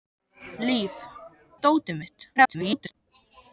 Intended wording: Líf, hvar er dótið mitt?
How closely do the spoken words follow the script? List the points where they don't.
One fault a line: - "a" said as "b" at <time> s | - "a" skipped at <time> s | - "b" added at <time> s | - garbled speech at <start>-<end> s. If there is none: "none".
- "hvar" skipped at 0.9 s
- garbled speech at 2.4-2.9 s